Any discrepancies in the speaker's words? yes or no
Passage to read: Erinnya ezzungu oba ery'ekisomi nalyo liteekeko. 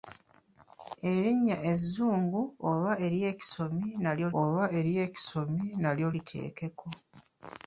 yes